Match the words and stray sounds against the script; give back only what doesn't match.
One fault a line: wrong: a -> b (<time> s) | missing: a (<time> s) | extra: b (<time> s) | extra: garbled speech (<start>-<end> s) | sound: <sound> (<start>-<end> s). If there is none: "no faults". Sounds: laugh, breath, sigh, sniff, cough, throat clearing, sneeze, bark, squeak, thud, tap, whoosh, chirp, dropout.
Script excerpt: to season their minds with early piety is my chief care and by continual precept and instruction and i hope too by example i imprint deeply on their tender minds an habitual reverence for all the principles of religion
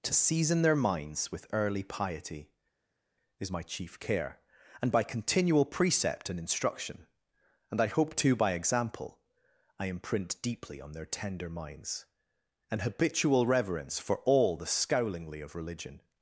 wrong: principles -> scowlingly (14.7 s)